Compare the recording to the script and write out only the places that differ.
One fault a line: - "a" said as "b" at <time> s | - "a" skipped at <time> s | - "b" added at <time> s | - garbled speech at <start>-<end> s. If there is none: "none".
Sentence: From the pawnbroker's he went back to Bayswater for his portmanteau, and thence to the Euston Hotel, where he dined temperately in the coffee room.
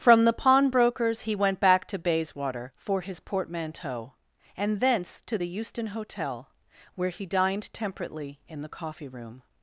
none